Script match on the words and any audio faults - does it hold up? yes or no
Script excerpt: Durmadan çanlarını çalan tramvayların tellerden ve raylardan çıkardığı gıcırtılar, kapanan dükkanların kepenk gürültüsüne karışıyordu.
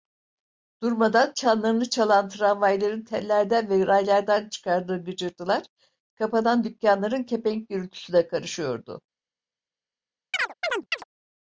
no